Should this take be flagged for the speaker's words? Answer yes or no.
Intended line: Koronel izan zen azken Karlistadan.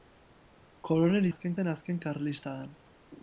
yes